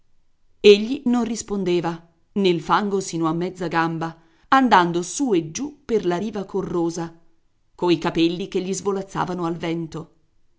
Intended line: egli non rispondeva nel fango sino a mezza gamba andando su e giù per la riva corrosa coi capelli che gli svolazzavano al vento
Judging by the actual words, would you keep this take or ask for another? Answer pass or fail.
pass